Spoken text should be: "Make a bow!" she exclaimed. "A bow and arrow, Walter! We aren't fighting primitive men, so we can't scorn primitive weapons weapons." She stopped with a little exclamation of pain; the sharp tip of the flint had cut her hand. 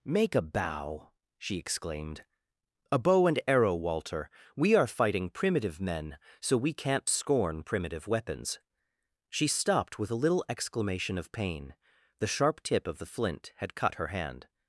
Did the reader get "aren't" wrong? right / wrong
wrong